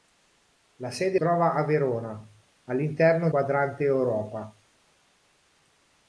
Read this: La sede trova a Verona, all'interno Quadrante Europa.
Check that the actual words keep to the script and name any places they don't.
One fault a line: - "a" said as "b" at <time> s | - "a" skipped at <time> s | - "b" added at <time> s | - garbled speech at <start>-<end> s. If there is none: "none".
none